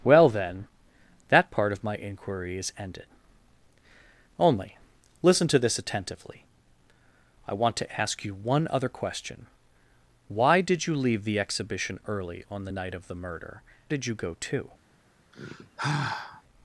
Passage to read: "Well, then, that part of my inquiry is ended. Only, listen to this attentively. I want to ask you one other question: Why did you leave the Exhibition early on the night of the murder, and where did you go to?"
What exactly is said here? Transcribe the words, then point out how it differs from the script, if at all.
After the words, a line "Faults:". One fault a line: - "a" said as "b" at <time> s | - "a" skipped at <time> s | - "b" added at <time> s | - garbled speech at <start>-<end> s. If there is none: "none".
"Well, then, that part of my inquiry is ended. Only, listen to this attentively. I want to ask you one other question: Why did you leave the Exhibition early on the night of the murder, did you go to?"
Faults:
- "and where" skipped at 13.6 s